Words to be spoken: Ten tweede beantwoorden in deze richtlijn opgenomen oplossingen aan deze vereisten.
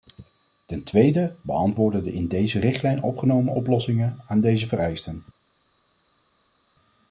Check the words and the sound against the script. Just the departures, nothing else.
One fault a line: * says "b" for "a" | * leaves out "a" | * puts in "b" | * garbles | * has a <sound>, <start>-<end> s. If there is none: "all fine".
* puts in "de"